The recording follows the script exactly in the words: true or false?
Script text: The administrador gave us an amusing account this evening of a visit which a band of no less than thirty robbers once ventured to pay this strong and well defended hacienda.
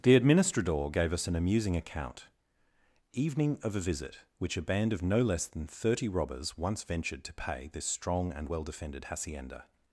false